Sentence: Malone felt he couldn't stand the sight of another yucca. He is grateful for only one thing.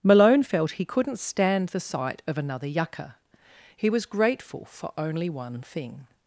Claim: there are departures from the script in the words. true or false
true